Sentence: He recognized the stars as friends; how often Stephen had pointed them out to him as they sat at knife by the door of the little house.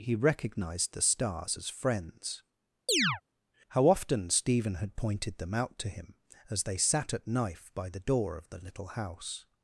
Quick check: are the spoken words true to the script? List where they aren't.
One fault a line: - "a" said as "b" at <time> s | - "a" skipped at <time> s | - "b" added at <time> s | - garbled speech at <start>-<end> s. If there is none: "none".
none